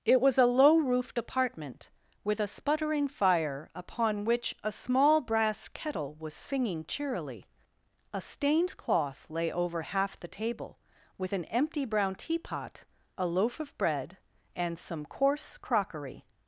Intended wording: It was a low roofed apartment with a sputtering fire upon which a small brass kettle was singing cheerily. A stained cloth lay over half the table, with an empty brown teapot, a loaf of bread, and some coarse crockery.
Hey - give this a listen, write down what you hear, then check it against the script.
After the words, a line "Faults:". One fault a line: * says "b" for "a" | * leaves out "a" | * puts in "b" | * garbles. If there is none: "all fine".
It was a low roofed apartment with a sputtering fire upon which a small brass kettle was singing cheerily. A stained cloth lay over half the table, with an empty brown teapot, a loaf of bread, and some coarse crockery.
Faults:
all fine